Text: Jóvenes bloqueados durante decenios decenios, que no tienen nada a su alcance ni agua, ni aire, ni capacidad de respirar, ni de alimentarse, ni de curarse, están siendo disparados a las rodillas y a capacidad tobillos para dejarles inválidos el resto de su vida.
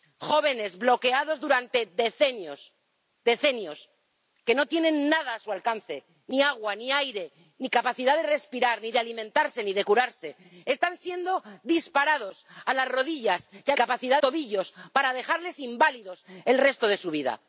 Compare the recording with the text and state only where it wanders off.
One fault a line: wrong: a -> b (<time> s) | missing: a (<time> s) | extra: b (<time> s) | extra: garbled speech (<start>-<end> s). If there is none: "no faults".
no faults